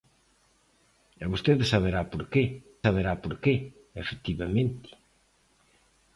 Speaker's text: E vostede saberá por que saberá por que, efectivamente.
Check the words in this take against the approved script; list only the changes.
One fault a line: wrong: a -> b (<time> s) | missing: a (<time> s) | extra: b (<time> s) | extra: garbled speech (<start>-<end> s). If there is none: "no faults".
no faults